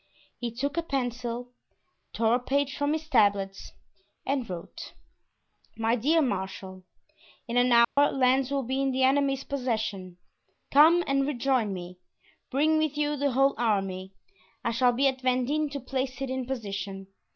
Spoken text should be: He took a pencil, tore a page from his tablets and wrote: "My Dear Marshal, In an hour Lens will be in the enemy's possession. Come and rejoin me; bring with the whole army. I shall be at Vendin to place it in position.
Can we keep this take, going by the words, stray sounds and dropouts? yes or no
no